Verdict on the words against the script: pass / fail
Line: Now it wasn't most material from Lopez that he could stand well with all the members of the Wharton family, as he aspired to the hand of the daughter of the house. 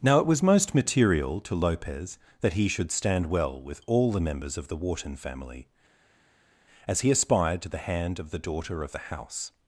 fail